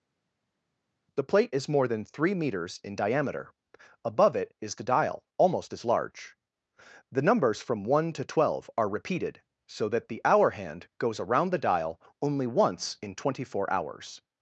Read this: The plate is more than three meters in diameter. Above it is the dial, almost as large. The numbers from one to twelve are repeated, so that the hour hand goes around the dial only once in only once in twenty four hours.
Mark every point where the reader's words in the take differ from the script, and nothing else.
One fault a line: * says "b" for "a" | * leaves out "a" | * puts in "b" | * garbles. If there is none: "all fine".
* leaves out "only once in"